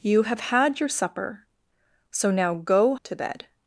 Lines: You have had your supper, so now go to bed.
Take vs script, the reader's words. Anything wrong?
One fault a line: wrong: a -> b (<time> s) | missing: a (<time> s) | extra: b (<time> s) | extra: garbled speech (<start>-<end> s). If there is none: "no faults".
no faults